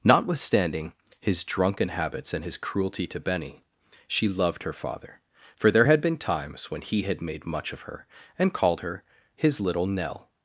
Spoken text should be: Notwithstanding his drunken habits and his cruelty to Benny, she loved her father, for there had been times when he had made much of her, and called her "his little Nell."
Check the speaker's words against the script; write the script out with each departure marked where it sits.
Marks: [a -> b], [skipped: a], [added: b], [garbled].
Notwithstanding his drunken habits and his cruelty to Benny, she loved her father, for there had been times when he had made much of her, and called her "his little Nell."